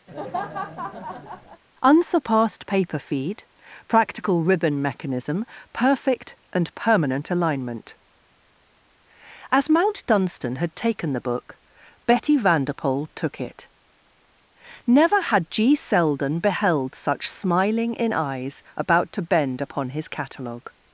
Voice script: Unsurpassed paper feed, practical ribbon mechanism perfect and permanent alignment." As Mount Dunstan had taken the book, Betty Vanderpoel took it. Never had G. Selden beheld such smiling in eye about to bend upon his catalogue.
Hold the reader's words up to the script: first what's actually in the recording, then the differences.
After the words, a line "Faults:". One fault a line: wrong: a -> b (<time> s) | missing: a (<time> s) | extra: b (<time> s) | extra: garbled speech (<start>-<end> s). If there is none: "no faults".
Unsurpassed paper feed, practical ribbon mechanism perfect and permanent alignment." As Mount Dunstan had taken the book, Betty Vanderpoel took it. Never had G. Selden beheld such smiling in eyes about to bend upon his catalogue.
Faults:
wrong: eye -> eyes (18.1 s)